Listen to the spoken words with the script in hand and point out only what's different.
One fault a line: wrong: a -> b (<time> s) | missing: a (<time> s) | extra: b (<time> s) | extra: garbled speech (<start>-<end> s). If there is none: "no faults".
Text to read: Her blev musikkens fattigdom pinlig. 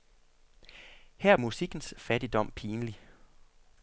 missing: blev (1.4 s)